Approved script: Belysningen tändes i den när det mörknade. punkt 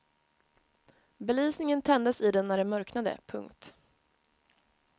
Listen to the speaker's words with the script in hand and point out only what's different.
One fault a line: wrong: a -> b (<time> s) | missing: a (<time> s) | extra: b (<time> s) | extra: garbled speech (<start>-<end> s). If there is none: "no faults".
no faults